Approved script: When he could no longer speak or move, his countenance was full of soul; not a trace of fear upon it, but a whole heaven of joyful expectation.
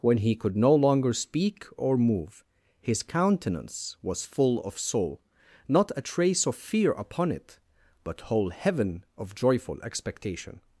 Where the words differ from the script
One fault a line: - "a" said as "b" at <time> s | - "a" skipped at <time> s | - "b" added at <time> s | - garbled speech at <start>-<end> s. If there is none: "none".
- "a" skipped at 8.2 s